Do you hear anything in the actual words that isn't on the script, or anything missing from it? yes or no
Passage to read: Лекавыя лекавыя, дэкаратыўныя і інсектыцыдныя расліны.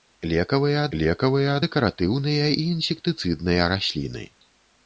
no